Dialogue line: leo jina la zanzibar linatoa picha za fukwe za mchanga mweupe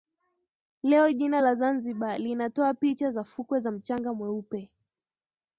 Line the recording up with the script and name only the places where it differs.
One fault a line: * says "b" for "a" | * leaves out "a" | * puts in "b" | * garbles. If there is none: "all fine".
all fine